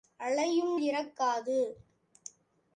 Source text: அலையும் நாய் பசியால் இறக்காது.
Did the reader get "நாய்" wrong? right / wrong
wrong